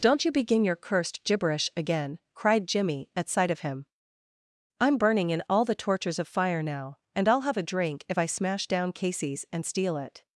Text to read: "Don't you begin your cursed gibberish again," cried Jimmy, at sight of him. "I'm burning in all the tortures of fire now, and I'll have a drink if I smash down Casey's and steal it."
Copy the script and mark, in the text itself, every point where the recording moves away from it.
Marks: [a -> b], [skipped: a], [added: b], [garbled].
"Don't you begin your cursed gibberish again," cried Jimmy, at sight of him. "I'm burning in all the tortures of fire now, and I'll have a drink if I smash down Casey's and steal it."